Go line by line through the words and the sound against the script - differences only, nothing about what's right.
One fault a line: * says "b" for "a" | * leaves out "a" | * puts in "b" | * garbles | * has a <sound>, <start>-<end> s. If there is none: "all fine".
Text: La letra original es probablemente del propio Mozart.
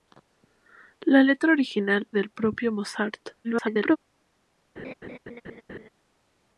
* leaves out "es probablemente"
* garbles
* has a laugh, 4.8-5.9 s